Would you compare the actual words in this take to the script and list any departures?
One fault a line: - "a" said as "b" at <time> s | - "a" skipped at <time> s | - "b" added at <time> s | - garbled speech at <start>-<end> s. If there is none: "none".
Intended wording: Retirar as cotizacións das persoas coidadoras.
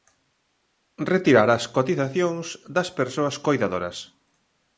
none